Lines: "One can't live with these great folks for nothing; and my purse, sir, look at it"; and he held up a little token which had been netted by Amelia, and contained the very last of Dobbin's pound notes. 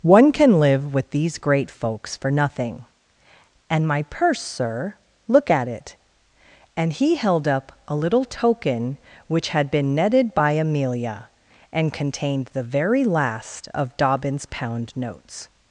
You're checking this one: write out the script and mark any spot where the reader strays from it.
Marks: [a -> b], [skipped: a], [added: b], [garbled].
"One [can't -> can] live with these great folks for nothing; and my purse, sir, look at it"; and he held up a little token which had been netted by Amelia, and contained the very last of Dobbin's pound notes.